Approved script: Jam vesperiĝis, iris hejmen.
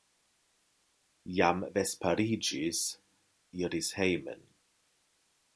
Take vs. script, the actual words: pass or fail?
pass